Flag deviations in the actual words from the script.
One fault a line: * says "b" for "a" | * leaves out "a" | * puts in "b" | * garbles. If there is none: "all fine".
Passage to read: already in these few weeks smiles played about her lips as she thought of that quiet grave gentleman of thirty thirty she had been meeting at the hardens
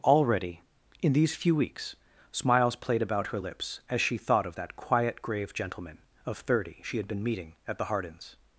* leaves out "thirty"